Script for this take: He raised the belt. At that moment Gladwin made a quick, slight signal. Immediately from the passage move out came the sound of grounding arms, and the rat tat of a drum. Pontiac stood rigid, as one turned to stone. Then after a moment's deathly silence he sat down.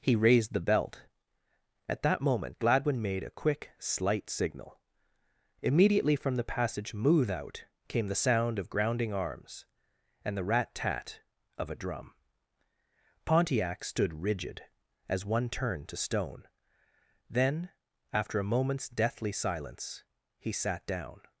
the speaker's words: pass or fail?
pass